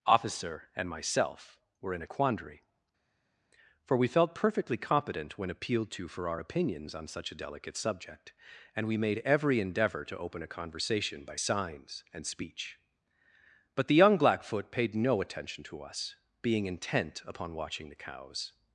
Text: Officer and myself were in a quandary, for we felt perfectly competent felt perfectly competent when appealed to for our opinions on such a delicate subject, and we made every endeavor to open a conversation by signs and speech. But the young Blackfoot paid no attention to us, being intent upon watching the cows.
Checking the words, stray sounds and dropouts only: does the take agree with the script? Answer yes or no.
no